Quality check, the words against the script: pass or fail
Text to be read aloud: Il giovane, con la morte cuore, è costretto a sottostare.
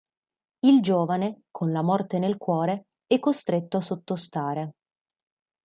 fail